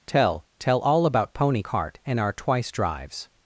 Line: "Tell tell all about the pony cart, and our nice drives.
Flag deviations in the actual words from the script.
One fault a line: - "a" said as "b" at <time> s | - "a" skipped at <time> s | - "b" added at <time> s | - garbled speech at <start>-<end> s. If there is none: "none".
- "the" skipped at 1.3 s
- "nice" said as "twice" at 2.3 s